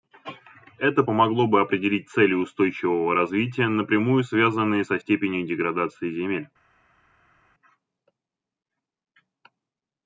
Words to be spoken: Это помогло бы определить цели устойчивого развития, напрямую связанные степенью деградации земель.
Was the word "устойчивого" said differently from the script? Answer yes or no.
no